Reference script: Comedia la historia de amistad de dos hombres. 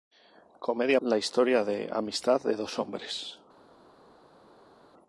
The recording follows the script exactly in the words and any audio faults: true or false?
true